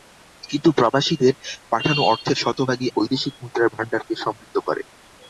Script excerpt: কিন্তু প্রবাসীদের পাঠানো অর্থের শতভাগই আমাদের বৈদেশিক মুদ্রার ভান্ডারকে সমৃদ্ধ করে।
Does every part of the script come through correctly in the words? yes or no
no